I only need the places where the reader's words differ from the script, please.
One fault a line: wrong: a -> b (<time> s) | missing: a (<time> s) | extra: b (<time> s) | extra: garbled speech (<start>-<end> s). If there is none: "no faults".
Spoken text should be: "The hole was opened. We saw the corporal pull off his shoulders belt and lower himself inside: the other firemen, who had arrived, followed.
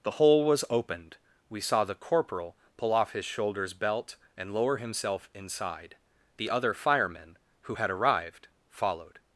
no faults